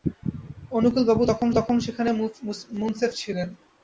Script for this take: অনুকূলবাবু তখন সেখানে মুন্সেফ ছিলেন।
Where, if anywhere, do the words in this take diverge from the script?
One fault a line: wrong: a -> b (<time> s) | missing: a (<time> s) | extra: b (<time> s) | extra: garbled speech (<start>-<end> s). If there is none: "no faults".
extra: তখন (1.6 s)